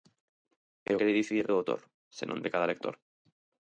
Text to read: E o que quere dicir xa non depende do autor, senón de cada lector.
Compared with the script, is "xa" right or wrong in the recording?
wrong